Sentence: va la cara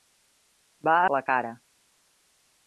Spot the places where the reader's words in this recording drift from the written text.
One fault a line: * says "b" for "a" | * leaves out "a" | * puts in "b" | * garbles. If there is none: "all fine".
all fine